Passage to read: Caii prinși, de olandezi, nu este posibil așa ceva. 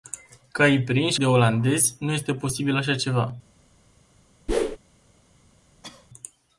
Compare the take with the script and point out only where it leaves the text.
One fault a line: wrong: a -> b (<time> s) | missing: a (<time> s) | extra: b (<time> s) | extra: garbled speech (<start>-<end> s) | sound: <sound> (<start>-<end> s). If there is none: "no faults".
sound: whoosh (4.5-4.8 s)
sound: cough (5.8-6.1 s)